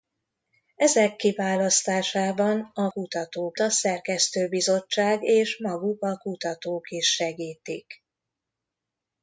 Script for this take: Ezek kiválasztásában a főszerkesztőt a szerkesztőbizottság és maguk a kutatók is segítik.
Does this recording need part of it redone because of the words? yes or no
yes